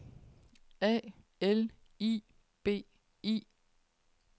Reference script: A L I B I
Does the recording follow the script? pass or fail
pass